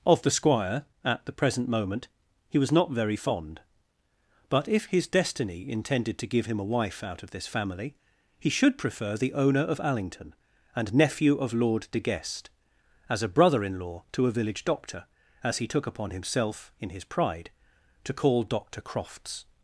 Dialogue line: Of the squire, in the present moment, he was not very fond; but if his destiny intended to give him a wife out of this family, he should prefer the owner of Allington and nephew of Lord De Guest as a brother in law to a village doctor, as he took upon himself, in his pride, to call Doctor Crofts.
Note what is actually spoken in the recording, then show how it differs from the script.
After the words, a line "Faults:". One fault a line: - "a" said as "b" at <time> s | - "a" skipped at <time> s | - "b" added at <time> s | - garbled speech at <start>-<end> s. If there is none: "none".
Of the squire, at the present moment, he was not very fond; but if his destiny intended to give him a wife out of this family, he should prefer the owner of Allington and nephew of Lord De Guest as a brother in law to a village doctor, as he took upon himself, in his pride, to call Doctor Crofts.
Faults:
- "in" said as "at" at 1.1 s